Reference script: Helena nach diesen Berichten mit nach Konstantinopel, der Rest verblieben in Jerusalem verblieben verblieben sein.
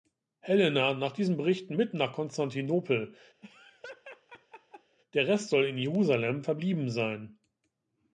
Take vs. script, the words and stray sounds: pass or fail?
fail